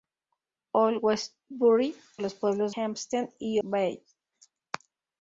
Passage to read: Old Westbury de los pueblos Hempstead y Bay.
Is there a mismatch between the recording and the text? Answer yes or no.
no